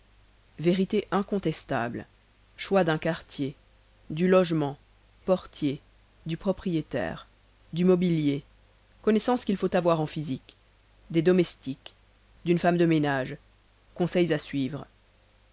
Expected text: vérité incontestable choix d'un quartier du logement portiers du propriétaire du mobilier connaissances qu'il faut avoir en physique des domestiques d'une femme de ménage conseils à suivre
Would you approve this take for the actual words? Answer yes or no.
yes